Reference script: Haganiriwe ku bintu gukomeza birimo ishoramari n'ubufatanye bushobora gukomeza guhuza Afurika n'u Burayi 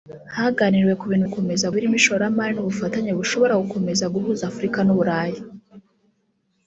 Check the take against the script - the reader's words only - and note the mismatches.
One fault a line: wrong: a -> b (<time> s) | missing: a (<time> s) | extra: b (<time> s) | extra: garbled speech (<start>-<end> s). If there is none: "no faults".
no faults